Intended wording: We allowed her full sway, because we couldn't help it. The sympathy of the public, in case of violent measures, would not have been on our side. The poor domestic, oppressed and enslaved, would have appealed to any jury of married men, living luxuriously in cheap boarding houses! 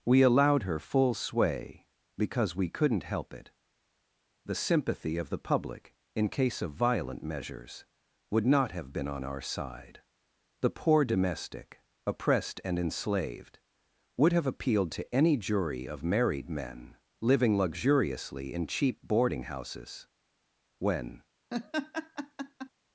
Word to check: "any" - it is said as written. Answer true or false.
true